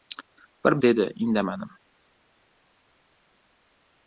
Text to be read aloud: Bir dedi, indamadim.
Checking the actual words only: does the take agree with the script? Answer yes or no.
yes